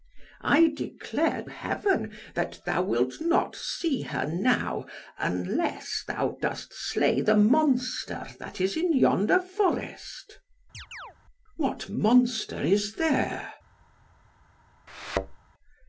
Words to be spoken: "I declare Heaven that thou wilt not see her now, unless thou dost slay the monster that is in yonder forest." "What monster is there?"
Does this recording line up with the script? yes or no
yes